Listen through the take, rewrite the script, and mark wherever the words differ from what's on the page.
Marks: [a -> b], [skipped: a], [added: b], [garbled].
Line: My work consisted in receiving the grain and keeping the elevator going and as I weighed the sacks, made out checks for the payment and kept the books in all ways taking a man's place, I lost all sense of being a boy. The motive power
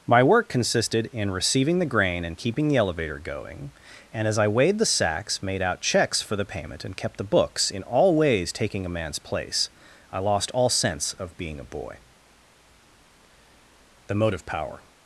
My work consisted in receiving the grain and keeping the elevator going and as I weighed the sacks, made out checks for the payment and kept the books in all ways taking a man's place, I lost all sense of being a boy. The motive power